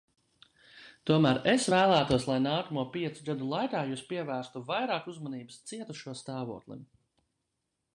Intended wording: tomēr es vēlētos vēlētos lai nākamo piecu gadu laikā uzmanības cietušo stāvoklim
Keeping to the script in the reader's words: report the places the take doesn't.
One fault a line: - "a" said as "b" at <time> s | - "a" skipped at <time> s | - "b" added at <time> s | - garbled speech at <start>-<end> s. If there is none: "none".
- "vēlētos" skipped at 2.3 s
- "jūs pievērstu vairāk" added at 3.9 s